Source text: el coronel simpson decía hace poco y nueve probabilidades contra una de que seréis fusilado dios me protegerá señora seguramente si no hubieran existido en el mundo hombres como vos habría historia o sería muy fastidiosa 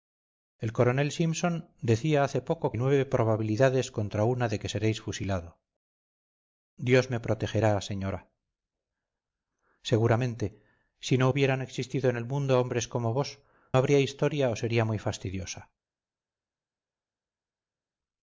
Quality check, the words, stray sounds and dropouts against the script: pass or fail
pass